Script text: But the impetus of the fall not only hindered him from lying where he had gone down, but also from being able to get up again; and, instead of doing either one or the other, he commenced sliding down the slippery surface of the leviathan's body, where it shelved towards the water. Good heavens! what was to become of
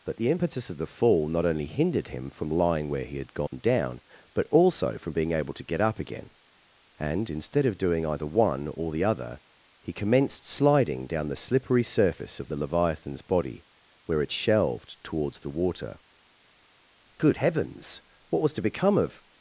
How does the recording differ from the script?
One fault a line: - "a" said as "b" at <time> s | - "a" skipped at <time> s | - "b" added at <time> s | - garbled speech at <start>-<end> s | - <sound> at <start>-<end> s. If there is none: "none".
- dropout at 3.5-3.5 s